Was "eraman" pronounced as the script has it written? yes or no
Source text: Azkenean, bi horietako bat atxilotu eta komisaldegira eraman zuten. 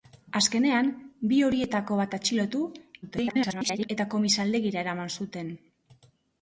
yes